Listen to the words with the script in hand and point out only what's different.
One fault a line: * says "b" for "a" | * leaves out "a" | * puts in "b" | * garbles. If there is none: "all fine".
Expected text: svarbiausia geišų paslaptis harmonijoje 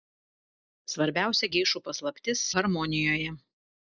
all fine